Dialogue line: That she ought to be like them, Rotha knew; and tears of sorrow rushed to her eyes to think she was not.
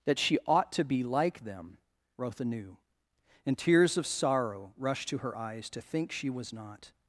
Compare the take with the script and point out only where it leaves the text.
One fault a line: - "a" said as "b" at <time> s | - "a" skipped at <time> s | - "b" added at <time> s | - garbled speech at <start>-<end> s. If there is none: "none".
none